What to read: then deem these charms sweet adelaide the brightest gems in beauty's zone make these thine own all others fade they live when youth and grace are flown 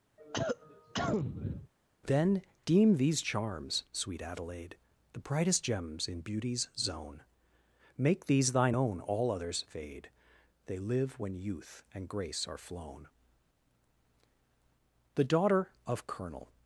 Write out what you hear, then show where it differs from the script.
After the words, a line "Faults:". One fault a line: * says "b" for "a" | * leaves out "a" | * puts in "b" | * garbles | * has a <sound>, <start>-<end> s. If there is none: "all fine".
then deem these charms sweet adelaide the brightest gems in beauty's zone make these thine own all others fade they live when youth and grace are flown the daughter of colonel
Faults:
* has a cough, 0.2-1.7 s
* puts in "the daughter of colonel"